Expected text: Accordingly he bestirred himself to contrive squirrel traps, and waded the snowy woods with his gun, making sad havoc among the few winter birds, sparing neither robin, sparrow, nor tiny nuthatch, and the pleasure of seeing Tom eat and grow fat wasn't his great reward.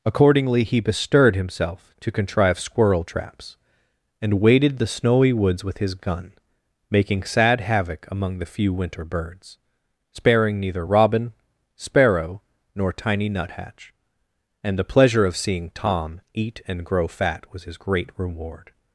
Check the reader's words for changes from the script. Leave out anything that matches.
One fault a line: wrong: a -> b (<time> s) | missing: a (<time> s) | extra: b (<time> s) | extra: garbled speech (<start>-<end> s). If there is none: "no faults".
wrong: wasn't -> was (17.5 s)